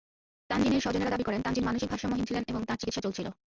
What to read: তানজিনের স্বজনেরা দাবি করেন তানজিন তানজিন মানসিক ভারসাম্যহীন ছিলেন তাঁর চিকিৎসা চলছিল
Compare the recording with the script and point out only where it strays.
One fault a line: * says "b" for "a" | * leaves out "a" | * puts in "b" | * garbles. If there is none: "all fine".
* leaves out "তানজিন"
* puts in "এবং"